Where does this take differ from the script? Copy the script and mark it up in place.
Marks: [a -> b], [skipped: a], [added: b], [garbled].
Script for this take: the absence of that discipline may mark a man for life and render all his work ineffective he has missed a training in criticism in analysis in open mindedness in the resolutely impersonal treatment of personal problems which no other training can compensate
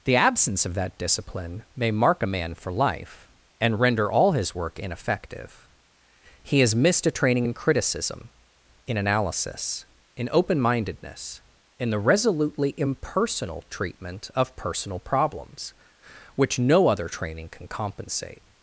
the absence of that discipline may mark a man for life and render all his work ineffective he has missed a training in criticism in analysis in open mindedness in the resolutely impersonal treatment of personal problems which no other training can compensate